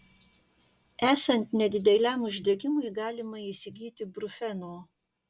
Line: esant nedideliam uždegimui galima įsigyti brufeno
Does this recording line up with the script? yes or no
yes